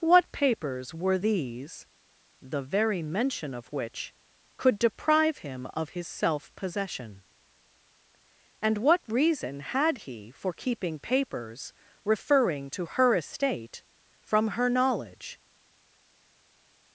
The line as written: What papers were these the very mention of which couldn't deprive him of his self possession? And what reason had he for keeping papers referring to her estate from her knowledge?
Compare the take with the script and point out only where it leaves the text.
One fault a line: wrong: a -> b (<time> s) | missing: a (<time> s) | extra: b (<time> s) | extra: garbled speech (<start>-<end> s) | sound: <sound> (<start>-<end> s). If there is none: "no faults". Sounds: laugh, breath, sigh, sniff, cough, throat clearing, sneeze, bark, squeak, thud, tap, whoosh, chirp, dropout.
wrong: couldn't -> could (4.6 s)